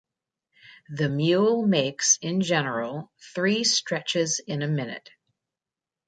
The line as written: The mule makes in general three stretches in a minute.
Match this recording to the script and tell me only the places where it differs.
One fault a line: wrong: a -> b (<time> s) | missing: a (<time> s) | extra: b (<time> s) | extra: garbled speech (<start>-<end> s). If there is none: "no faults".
no faults